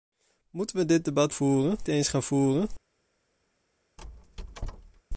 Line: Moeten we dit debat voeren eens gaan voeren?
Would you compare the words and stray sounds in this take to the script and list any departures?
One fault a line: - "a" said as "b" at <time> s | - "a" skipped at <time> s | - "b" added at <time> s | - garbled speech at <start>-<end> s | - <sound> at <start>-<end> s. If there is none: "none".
- squeak at 4.0-5.0 s